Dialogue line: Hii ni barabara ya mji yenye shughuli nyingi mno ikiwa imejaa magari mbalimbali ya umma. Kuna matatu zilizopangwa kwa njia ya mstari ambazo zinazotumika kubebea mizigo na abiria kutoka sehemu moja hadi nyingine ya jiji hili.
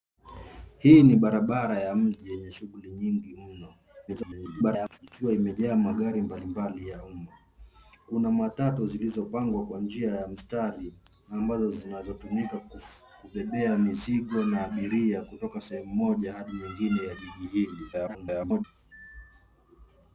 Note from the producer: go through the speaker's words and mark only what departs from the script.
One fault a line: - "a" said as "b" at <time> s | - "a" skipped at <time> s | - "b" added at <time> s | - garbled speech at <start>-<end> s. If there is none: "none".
- garbled speech at 4.1-5.0 s
- garbled speech at 17.9-18.6 s